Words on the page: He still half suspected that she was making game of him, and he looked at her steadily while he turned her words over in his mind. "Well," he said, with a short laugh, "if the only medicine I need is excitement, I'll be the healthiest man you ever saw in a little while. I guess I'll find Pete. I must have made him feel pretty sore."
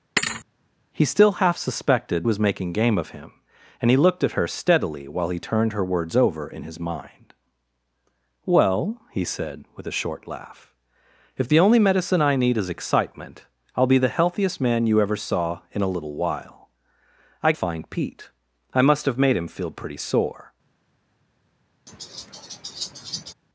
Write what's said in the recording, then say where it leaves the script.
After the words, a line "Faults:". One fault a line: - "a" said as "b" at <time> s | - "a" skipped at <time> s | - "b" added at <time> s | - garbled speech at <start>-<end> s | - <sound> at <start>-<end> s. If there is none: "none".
He still half suspected was making game of him, and he looked at her steadily while he turned her words over in his mind. "Well," he said, with a short laugh, "if the only medicine I need is excitement, I'll be the healthiest man you ever saw in a little while. I find Pete. I must have made him feel pretty sore."
Faults:
- thud at 0.2-0.5 s
- "that she" skipped at 2.3 s
- "guess I'll" skipped at 17.5 s
- laugh at 21.9-23.3 s